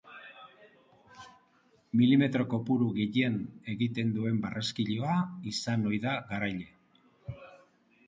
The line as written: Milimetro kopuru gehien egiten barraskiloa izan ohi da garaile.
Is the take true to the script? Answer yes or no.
no